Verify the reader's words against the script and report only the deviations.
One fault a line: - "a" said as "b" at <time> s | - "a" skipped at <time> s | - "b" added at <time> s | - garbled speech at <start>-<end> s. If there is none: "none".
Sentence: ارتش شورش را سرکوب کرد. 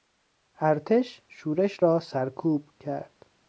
none